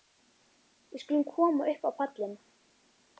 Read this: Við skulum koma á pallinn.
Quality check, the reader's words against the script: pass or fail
fail